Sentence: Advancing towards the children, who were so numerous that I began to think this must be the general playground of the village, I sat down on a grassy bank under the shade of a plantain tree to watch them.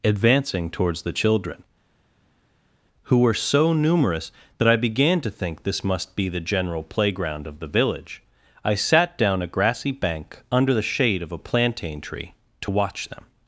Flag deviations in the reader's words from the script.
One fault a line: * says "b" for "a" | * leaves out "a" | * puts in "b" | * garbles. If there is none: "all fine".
* leaves out "on"